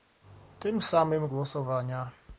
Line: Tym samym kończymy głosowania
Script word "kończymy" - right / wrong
wrong